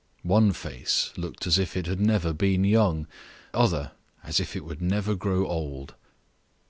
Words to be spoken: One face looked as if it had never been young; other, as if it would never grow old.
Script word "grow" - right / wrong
right